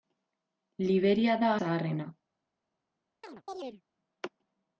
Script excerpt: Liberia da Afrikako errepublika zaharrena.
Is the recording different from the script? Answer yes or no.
yes